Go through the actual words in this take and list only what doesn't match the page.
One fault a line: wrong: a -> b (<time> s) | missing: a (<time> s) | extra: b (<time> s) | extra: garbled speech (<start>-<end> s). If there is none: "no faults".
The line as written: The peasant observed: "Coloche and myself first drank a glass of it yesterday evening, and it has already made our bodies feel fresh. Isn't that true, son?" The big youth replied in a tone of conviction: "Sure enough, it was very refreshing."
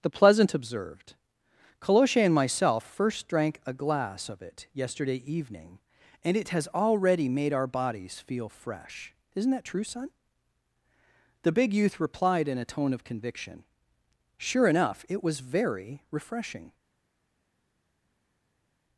wrong: peasant -> pleasant (0.1 s)